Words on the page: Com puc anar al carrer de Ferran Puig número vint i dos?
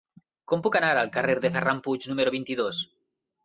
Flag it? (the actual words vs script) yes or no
no